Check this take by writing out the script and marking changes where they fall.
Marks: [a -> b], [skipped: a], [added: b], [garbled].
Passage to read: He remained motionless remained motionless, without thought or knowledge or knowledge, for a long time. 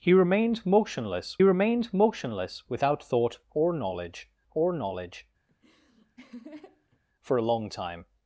He remained motionless remained motionless, without thought or knowledge or knowledge, for a long time.